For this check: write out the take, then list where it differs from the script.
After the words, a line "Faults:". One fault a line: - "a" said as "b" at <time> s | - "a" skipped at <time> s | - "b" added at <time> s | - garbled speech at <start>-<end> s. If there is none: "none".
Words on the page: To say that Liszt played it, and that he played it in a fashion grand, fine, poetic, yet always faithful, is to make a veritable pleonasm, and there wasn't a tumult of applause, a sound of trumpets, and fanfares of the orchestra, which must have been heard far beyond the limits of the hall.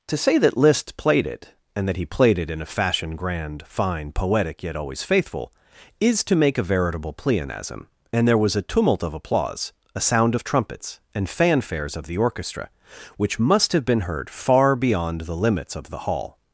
To say that Liszt played it, and that he played it in a fashion grand, fine, poetic, yet always faithful, is to make a veritable pleonasm, and there was a tumult of applause, a sound of trumpets, and fanfares of the orchestra, which must have been heard far beyond the limits of the hall.
Faults:
- "wasn't" said as "was" at 8.4 s